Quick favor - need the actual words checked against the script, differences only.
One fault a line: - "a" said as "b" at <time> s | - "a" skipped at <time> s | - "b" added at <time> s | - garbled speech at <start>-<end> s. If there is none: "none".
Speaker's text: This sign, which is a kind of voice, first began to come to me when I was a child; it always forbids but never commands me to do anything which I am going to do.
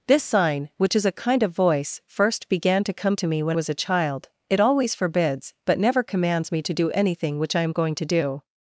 - "I" skipped at 3.6 s